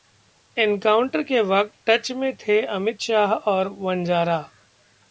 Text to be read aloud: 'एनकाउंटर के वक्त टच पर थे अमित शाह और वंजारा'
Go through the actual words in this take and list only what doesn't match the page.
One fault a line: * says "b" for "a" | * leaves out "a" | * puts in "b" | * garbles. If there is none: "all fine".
* says "में" for "पर"